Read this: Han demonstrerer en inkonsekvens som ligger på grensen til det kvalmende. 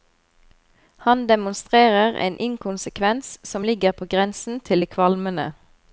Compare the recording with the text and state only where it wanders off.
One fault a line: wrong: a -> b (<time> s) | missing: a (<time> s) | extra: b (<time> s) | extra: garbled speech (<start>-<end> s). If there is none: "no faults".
no faults